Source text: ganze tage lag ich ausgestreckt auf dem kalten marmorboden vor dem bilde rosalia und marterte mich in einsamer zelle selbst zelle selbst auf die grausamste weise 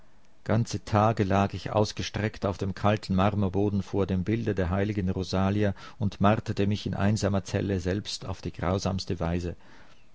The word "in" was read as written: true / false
true